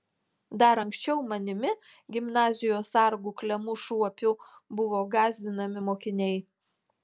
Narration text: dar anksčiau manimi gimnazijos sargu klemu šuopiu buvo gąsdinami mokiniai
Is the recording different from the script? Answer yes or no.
no